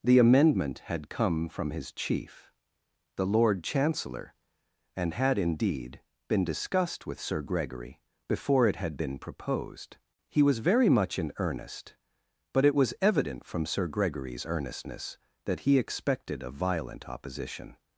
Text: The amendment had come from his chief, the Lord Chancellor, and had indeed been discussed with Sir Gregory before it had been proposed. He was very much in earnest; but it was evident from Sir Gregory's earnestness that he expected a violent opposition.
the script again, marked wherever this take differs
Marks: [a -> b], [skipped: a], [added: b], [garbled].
The amendment had come from his chief, the Lord Chancellor, and had indeed been discussed with Sir Gregory before it had been proposed. He was very much in earnest; but it was evident from Sir Gregory's earnestness that he expected a violent opposition.